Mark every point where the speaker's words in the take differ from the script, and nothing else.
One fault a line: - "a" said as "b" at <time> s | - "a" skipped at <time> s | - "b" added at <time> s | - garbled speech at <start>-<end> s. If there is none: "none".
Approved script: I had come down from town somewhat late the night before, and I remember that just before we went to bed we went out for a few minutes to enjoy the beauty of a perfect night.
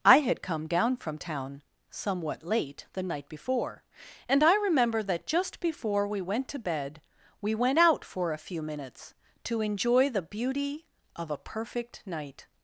none